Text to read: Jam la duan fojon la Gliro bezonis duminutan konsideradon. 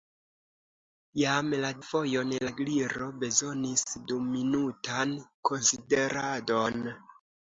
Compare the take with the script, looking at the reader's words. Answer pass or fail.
fail